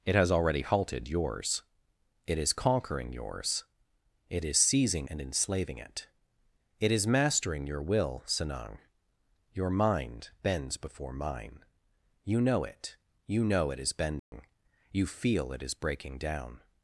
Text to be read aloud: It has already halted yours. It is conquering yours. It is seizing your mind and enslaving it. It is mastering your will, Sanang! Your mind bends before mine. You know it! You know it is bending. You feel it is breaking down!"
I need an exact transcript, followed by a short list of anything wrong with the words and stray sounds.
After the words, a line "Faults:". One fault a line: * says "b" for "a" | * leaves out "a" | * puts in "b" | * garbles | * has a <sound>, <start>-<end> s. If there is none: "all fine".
It has already halted yours. It is conquering yours. It is seizing and enslaving it. It is mastering your will, Sanang! Your mind bends before mine. You know it! You know it is bending. You feel it is breaking down!"
Faults:
* leaves out "your mind"
* has a dropout, 14.2-14.3 s